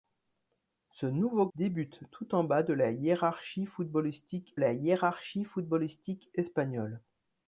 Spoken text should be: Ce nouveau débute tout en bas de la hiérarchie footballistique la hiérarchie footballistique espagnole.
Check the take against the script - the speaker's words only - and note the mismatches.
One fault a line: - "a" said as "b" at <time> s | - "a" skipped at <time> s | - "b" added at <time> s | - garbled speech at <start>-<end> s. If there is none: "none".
none